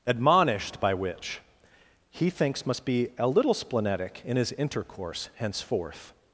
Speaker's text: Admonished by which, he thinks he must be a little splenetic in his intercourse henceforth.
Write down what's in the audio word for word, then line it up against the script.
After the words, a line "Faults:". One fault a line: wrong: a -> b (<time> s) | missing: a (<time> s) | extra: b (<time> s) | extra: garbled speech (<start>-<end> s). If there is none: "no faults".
Admonished by which, he thinks must be a little splenetic in his intercourse henceforth.
Faults:
missing: he (2.6 s)